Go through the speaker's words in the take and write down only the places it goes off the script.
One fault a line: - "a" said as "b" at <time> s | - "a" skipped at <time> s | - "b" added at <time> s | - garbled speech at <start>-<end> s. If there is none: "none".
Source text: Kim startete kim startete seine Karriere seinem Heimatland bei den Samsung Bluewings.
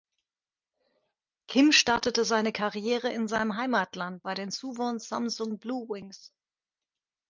- "kim startete" skipped at 2.2 s
- "in" added at 3.1 s
- "Suwon" added at 4.5 s